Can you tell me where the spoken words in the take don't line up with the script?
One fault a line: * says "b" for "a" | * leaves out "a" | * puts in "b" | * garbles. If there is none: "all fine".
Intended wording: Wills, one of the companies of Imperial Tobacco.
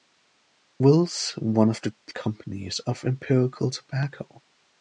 all fine